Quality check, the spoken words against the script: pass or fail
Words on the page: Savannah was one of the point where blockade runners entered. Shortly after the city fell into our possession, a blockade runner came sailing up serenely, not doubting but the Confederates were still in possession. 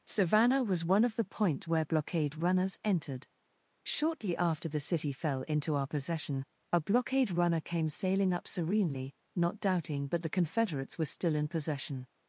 pass